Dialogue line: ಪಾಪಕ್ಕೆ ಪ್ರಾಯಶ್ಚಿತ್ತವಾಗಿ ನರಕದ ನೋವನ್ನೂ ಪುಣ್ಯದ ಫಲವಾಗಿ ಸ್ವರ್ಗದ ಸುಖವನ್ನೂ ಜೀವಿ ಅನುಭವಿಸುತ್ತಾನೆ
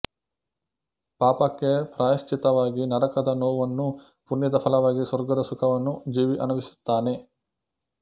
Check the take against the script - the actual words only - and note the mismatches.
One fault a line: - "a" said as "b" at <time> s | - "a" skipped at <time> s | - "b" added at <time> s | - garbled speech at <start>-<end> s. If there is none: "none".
none